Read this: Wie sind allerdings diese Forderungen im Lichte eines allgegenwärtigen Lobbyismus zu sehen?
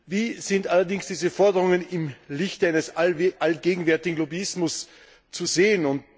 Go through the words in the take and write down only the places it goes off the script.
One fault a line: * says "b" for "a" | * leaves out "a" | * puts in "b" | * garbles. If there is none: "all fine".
all fine